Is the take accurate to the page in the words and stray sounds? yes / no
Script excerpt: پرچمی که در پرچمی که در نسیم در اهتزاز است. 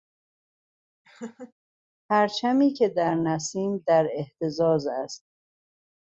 no